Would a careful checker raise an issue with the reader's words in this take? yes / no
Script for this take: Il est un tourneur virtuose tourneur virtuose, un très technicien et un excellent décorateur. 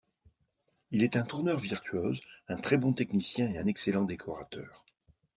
yes